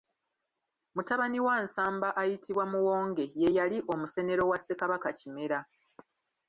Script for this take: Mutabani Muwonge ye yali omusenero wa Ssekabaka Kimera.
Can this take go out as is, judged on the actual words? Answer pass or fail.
fail